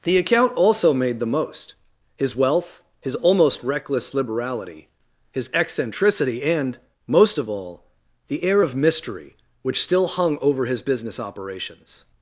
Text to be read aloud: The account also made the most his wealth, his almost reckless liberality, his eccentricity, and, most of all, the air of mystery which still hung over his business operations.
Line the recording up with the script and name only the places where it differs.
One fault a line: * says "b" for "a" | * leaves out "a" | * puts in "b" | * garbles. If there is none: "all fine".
all fine